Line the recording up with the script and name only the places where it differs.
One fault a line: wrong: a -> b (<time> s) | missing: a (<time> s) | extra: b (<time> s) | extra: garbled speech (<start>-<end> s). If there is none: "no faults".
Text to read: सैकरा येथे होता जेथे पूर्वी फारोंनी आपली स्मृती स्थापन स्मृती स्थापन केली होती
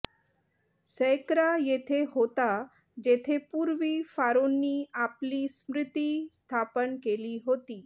missing: स्मृती स्थापन (7.0 s)